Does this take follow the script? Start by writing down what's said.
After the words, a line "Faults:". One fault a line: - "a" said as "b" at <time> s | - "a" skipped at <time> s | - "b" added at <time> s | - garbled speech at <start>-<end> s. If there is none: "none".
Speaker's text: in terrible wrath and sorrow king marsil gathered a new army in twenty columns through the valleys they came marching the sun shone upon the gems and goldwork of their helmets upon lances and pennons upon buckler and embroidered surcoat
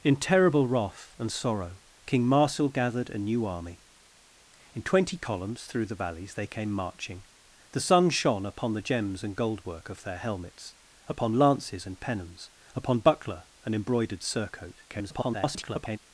in terrible wrath and sorrow king marsil gathered a new army in twenty columns through the valleys they came marching the sun shone upon the gems and goldwork of their helmets upon lances and pennons upon buckler and embroidered surcoat [garbled]
Faults:
- garbled speech at 14.9-16.0 s